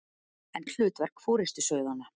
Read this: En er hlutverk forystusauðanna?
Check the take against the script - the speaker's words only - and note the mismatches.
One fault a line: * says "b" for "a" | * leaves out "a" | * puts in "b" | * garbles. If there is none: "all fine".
all fine